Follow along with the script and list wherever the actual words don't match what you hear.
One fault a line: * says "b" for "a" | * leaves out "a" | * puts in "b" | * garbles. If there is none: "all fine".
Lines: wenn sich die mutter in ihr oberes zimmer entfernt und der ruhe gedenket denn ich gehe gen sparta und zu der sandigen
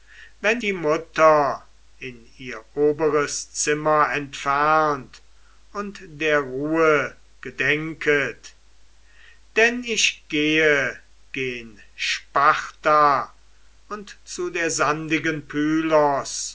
* leaves out "sich"